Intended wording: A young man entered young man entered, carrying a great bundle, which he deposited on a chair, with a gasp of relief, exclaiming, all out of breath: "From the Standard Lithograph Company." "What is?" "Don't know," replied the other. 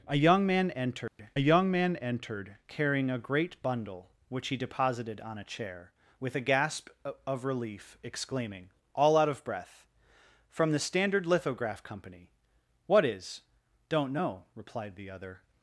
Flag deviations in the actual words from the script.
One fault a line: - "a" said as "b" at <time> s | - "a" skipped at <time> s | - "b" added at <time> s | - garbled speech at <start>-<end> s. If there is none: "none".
none